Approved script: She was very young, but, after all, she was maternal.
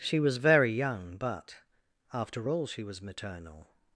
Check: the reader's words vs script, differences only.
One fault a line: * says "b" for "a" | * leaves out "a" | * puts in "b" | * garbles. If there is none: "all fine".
all fine